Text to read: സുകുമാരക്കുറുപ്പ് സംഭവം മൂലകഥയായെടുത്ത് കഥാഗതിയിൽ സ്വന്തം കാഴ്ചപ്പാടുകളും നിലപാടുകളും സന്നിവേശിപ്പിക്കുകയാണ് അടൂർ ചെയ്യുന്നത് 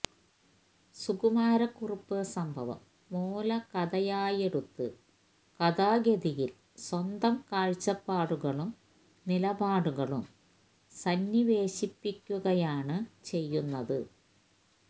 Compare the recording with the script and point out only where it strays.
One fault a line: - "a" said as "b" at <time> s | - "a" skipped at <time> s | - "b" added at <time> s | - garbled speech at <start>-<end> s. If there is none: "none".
- "അടൂർ" skipped at 13.0 s